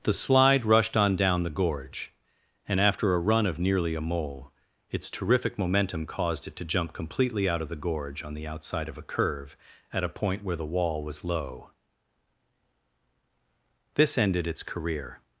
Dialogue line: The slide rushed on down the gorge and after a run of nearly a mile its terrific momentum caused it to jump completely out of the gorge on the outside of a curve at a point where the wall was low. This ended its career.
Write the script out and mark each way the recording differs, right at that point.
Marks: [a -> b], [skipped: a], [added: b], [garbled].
The slide rushed on down the gorge and after a run of nearly a [mile -> mole] its terrific momentum caused it to jump completely out of the gorge on the outside of a curve at a point where the wall was low. This ended its career.